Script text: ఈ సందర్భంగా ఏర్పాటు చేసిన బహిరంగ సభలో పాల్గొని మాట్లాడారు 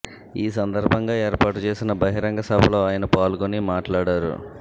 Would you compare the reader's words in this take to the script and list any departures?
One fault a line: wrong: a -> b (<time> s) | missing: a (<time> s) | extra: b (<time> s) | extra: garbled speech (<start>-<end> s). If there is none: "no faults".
extra: ఆయన (2.9 s)